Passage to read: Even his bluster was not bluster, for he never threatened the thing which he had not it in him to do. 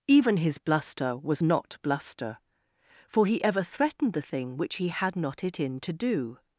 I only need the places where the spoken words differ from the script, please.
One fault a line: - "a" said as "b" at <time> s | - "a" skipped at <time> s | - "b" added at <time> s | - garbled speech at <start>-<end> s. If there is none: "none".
- "never" said as "ever" at 3.4 s
- "him" skipped at 5.8 s